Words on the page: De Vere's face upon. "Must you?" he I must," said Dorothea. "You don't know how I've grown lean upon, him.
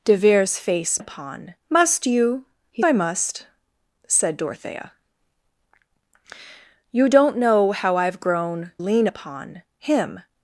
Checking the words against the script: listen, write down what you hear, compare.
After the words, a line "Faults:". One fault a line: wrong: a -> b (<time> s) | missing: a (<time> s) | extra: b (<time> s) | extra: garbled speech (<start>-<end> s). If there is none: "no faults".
De Vere's face upon. "Must you?" he I must," said Dorothea. "You don't know how I've grown lean upon, him.
Faults:
no faults